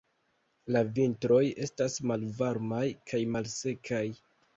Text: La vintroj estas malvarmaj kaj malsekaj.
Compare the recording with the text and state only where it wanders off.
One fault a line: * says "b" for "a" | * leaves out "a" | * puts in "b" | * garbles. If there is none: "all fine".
all fine